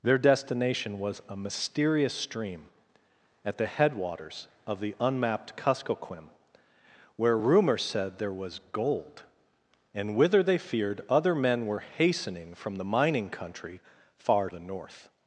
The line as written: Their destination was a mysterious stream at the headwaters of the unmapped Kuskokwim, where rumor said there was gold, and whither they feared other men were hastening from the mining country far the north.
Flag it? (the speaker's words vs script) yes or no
no